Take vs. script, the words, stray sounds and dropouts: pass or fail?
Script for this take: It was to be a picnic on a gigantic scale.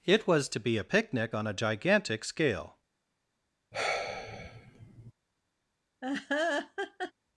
fail